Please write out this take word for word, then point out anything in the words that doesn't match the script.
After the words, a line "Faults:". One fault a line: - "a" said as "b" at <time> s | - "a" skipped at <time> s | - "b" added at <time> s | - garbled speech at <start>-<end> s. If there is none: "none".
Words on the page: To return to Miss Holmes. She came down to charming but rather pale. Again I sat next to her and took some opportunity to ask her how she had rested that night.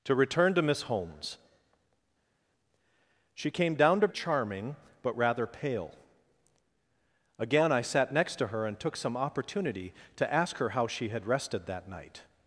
To return to Miss Holmes. She came down to charming but rather pale. Again I sat next to her and took some opportunity to ask her how she had rested that night.
Faults:
none